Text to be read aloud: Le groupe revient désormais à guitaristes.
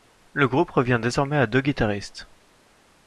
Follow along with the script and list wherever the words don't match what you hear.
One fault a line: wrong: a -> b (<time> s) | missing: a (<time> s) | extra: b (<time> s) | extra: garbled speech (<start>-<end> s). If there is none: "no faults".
extra: deux (1.4 s)